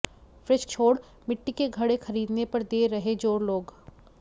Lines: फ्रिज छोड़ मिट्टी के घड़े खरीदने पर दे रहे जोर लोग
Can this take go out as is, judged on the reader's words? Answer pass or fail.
pass